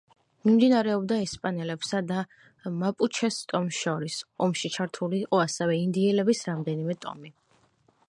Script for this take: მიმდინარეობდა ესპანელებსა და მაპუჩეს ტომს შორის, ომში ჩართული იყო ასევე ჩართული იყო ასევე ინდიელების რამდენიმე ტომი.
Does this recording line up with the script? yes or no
no